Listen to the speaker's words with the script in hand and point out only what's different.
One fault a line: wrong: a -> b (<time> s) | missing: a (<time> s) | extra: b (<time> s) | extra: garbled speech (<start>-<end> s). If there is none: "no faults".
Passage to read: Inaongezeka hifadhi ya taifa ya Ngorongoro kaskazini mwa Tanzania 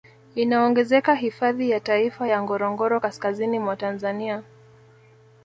no faults